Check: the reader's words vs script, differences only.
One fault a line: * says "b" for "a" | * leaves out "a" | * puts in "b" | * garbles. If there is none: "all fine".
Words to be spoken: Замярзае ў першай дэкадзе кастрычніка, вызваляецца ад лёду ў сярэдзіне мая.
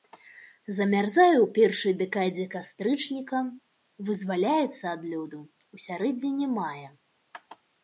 all fine